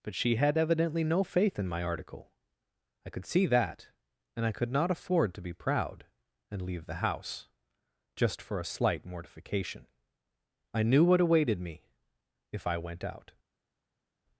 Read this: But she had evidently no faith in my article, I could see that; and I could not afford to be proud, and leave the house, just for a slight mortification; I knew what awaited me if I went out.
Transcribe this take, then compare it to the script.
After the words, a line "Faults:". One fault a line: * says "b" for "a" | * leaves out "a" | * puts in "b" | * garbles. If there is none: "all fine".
But she had evidently no faith in my article, I could see that; and I could not afford to be proud, and leave the house, just for a slight mortification; I knew what awaited me if I went out.
Faults:
all fine